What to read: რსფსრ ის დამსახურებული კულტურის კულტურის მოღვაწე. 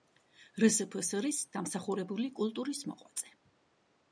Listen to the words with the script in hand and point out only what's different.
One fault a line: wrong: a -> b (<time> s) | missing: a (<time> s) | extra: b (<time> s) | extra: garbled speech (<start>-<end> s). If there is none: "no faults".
missing: კულტურის (2.8 s)